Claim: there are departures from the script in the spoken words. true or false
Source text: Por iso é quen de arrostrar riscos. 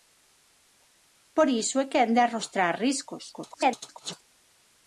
true